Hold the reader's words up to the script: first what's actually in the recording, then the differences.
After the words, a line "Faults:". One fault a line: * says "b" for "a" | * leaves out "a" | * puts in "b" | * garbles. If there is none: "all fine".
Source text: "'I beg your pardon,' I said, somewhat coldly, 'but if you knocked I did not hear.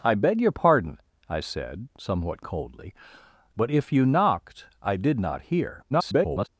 "'I beg your pardon,' I said, somewhat coldly, 'but if you knocked I did not hear. [garbled]
Faults:
* garbles